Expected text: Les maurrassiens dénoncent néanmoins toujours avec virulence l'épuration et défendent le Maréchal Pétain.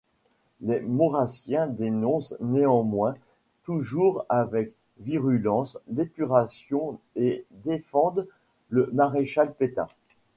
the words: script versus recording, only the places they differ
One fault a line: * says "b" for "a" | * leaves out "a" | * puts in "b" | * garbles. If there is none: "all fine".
all fine